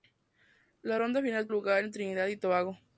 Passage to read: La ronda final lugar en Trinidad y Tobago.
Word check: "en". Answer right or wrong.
right